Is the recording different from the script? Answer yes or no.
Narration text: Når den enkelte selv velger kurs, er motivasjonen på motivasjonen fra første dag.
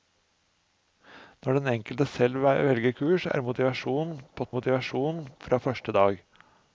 no